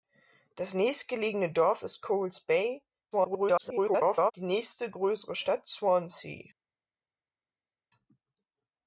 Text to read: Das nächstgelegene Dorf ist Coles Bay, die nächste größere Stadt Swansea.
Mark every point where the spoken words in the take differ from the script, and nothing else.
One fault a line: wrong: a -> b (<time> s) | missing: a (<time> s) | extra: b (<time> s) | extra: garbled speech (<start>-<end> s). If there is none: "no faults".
extra: garbled speech (3.1-4.3 s)